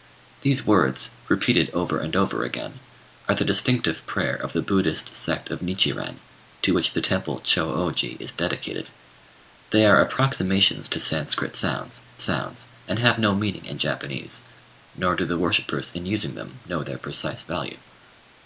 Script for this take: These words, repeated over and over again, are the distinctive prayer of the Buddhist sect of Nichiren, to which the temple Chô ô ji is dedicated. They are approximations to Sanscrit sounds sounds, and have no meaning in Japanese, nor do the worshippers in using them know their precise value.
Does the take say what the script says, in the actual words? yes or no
yes